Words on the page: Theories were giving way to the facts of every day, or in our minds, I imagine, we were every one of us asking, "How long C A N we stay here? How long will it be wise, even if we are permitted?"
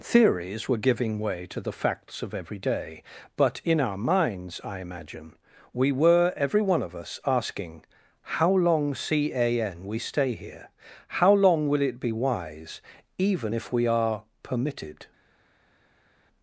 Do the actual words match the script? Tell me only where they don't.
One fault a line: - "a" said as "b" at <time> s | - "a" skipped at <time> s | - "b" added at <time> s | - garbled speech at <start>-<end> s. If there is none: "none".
- "or" said as "but" at 3.4 s